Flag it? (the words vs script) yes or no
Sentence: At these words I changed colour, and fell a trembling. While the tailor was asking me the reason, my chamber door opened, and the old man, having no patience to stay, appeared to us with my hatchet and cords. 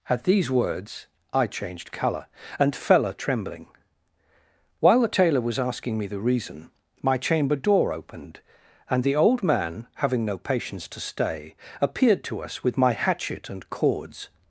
no